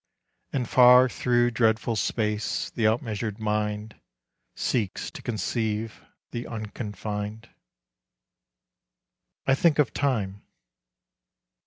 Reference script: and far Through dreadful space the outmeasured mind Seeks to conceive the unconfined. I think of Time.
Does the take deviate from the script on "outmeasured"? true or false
false